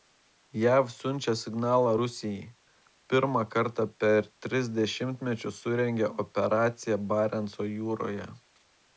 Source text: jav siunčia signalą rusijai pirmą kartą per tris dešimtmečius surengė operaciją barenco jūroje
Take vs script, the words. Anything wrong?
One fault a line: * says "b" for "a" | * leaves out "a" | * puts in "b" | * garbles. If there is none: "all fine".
all fine